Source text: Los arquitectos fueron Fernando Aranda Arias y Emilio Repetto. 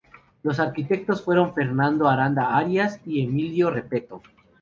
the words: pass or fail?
pass